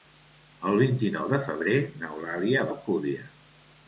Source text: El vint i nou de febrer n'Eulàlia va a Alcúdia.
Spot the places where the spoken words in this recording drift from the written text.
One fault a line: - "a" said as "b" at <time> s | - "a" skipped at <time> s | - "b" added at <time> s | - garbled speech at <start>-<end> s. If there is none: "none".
- "va a" skipped at 2.7 s